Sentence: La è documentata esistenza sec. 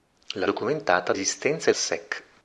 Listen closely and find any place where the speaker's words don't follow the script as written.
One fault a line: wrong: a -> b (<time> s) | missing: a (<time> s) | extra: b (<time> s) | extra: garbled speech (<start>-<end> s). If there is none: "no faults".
no faults